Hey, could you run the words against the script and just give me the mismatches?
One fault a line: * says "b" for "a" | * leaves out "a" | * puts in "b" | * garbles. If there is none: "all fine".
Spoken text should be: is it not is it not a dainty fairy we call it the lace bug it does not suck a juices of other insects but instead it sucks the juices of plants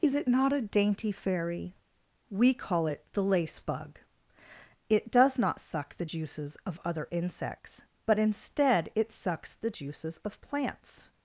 * leaves out "is it not"
* says "the" for "a"